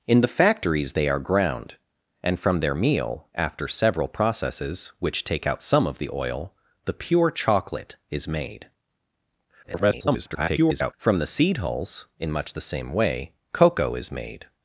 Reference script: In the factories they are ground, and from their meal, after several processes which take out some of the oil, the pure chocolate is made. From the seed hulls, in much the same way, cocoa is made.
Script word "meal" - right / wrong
right